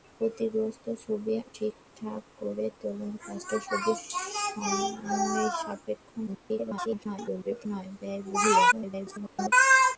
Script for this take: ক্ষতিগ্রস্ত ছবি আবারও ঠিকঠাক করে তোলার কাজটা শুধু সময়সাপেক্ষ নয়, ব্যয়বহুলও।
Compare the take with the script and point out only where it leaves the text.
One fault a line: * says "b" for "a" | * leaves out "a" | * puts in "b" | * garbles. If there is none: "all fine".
* leaves out "আবারও"
* garbles
* garbles